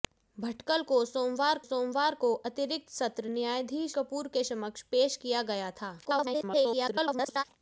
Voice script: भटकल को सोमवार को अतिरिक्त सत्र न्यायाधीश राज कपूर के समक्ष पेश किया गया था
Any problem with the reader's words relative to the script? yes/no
yes